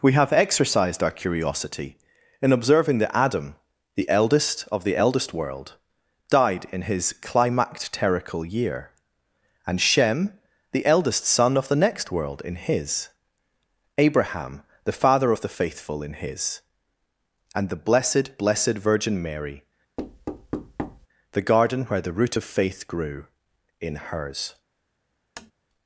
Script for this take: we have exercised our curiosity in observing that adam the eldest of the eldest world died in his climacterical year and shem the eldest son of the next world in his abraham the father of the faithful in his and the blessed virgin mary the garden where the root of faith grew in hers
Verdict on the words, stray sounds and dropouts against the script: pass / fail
fail